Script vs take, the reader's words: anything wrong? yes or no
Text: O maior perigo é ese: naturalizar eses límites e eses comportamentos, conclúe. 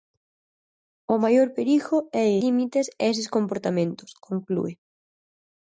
yes